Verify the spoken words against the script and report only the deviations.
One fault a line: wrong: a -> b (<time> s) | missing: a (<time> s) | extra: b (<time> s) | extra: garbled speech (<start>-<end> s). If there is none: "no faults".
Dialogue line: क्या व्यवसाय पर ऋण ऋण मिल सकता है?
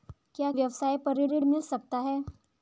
no faults